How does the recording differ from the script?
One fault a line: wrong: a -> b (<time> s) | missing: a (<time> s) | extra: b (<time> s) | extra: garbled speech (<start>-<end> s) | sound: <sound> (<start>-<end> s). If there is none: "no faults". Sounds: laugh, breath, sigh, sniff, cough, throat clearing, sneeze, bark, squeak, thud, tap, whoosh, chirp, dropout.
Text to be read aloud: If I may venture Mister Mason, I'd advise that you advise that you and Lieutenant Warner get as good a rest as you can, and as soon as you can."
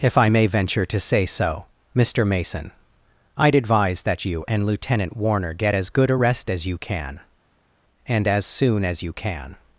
extra: to say so (0.9 s)
missing: advise that you (4.5 s)